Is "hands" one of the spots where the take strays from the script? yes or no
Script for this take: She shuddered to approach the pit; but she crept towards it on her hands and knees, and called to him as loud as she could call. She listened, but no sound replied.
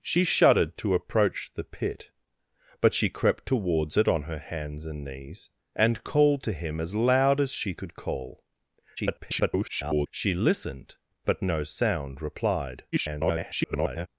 no